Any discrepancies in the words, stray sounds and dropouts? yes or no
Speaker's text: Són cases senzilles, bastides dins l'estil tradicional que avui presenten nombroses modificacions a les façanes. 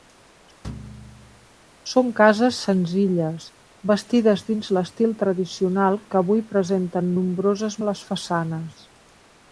yes